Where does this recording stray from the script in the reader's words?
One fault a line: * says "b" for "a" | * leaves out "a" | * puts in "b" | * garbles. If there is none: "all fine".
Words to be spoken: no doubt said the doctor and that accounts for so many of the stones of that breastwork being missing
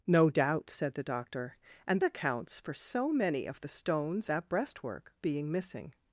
* leaves out "that"
* leaves out "of"